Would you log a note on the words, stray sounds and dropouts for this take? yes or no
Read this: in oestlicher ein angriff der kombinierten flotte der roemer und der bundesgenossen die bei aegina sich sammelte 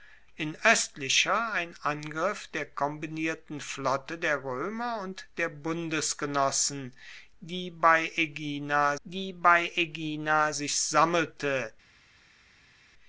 yes